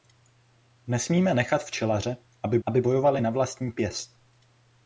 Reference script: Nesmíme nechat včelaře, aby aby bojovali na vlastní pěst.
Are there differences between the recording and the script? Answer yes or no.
no